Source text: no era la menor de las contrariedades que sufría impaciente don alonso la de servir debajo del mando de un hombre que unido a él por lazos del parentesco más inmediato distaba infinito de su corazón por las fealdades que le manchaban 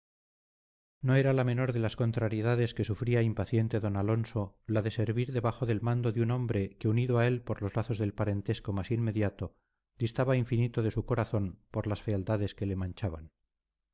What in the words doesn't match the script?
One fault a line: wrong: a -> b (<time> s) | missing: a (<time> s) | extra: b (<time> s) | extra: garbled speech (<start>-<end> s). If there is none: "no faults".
extra: los (7.6 s)